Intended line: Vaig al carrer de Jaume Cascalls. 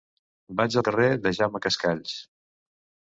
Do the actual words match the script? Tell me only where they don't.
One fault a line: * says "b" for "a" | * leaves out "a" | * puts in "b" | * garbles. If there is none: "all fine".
all fine